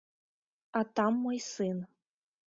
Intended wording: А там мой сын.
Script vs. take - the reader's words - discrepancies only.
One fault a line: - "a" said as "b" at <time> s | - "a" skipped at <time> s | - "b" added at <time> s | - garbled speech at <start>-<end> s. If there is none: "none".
none